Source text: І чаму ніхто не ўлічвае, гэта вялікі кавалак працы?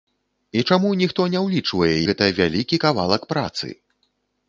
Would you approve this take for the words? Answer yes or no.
yes